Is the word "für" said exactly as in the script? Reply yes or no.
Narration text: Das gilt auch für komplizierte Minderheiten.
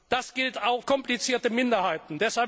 no